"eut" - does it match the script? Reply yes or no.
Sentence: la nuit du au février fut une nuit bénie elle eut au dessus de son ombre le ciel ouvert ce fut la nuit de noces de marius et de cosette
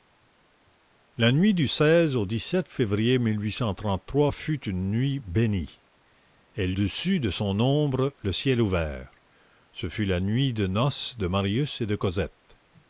no